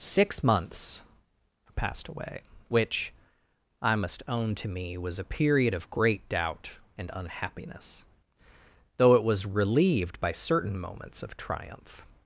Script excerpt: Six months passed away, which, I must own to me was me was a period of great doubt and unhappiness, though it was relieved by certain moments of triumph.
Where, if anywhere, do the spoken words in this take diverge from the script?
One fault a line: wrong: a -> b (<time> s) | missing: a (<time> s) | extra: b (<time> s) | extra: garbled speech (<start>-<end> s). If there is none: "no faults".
missing: me was (5.2 s)